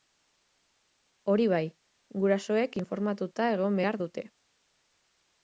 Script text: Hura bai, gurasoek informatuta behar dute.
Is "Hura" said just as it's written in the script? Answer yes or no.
no